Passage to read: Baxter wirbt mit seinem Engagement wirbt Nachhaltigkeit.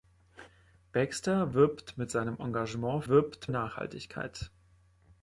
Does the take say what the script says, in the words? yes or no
yes